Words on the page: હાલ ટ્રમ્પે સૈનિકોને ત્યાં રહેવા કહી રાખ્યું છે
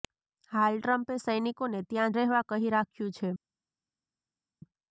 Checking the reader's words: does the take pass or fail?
pass